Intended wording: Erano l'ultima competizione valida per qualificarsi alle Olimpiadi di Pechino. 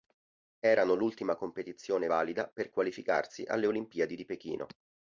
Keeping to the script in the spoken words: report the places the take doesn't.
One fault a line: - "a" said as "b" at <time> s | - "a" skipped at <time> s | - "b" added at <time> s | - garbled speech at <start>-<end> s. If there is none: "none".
none